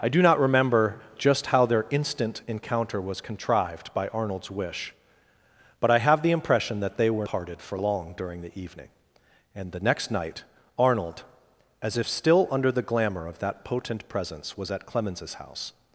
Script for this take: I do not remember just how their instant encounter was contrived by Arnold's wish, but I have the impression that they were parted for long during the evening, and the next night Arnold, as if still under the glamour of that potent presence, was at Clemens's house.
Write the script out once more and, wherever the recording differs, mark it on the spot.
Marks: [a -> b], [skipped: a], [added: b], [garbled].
I do not remember just how their instant encounter was contrived by Arnold's wish, but I have the impression that they were parted for long during the evening, and the next night Arnold, as if still under the glamour of that potent presence, was at Clemens's house.